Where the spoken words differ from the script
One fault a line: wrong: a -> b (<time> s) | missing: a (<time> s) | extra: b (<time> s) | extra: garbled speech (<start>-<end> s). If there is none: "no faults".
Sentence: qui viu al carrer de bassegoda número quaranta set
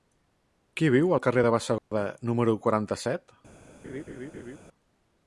no faults